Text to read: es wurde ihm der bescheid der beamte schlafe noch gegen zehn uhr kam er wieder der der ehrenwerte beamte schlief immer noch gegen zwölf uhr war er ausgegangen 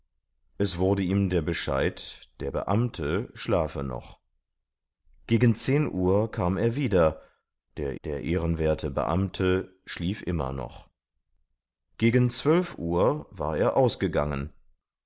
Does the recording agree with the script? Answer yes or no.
yes